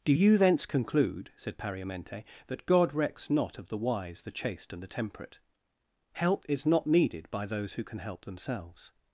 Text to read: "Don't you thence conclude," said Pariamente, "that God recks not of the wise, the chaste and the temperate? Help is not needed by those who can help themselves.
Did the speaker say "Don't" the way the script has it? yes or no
no